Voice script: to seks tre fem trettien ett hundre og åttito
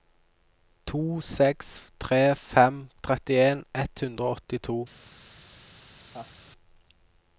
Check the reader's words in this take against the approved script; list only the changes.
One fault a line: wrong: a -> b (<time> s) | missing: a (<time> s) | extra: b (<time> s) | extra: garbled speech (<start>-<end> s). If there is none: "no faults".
no faults